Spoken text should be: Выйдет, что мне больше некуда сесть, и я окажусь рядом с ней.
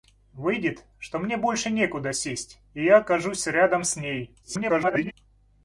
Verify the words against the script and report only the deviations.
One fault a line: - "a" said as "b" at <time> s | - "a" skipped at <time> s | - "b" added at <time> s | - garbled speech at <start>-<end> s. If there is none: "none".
- garbled speech at 4.4-5.1 s